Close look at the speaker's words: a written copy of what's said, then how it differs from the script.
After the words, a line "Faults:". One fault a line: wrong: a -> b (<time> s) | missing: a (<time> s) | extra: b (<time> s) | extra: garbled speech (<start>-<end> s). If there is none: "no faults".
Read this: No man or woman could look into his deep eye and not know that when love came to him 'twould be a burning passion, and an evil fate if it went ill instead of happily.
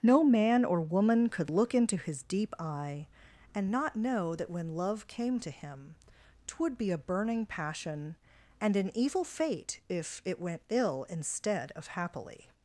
No man or woman could look into his deep eye and not know that when love came to him 'twould be a burning passion, and an evil fate if it went ill instead of happily.
Faults:
no faults